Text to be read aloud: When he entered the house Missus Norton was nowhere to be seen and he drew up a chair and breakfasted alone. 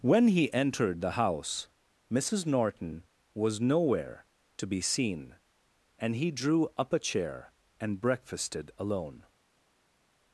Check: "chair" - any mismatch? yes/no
no